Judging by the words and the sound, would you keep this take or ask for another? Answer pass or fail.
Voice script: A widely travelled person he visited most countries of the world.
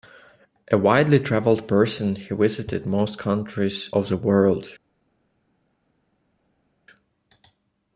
pass